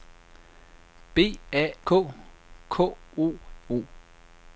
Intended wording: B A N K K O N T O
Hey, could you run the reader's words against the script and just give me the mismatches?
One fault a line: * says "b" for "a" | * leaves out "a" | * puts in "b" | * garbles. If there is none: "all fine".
* leaves out "N"
* leaves out "N T"